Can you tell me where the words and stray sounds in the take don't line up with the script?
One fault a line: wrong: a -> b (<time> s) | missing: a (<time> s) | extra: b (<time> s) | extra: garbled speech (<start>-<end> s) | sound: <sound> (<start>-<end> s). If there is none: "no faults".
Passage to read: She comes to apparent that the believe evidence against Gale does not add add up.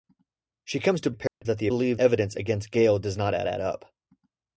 sound: dropout (1.3-1.4 s)